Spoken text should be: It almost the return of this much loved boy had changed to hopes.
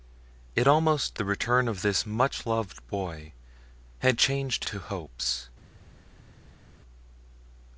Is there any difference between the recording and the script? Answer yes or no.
no